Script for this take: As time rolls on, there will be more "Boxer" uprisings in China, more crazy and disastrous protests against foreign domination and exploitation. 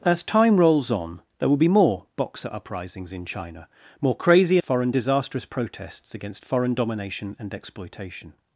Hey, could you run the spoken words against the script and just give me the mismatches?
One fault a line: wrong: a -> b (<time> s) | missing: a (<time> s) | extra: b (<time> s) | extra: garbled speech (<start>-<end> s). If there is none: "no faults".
wrong: and -> foreign (4.6 s)